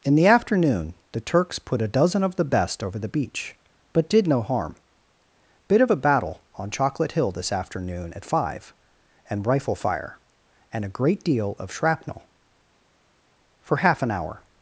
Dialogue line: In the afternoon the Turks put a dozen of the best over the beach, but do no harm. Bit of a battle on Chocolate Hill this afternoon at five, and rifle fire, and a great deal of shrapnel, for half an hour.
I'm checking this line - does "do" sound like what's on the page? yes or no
no